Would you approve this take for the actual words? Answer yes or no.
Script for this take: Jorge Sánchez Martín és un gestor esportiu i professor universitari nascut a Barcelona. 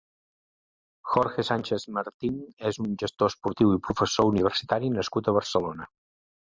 yes